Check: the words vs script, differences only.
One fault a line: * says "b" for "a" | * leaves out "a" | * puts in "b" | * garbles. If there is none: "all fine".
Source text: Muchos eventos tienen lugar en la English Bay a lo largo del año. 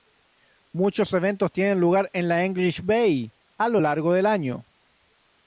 all fine